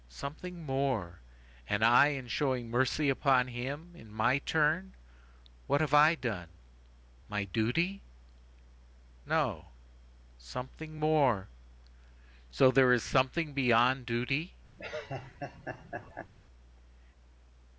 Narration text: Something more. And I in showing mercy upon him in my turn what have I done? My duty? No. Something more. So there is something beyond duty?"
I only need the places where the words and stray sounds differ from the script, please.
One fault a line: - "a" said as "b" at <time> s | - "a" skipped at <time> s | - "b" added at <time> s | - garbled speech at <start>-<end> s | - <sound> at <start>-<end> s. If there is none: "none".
- laugh at 14.8-16.3 s